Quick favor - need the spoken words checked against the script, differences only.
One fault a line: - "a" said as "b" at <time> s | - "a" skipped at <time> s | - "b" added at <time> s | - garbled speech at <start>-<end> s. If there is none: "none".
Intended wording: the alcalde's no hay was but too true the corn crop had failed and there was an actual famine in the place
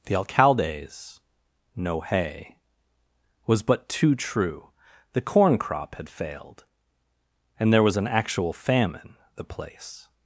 - "in" skipped at 9.2 s